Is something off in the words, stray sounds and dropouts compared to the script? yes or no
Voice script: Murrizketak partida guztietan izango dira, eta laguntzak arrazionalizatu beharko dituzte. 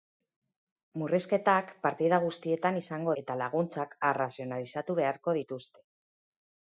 yes